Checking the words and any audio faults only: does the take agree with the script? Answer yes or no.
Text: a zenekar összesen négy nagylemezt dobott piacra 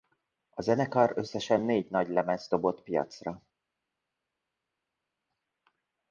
yes